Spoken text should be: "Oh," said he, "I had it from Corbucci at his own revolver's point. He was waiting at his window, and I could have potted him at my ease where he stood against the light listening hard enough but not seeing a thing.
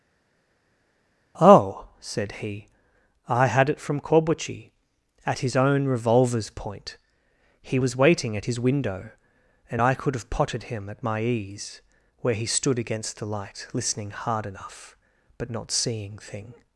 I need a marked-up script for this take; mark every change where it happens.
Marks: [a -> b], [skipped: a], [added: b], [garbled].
"Oh," said he, "I had it from Corbucci at his own revolver's point. He was waiting at his window, and I could have potted him at my ease where he stood against the light listening hard enough but not seeing [skipped: a] thing.